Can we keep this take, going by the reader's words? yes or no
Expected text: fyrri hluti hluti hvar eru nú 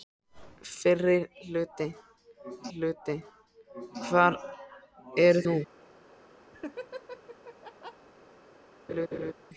yes